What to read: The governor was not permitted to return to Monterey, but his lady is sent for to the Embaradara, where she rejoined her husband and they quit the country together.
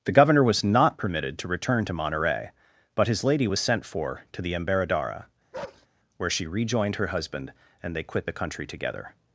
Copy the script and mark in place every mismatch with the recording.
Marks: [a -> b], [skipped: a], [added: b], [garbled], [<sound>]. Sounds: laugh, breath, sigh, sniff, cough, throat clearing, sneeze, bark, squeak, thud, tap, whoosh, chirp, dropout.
The governor was not permitted to return to Monterey, but his lady [is -> was] sent for to the Embaradara, [bark] where she rejoined her husband and they quit the country together.